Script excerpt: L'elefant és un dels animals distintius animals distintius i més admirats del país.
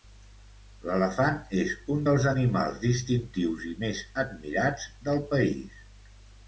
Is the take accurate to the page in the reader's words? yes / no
no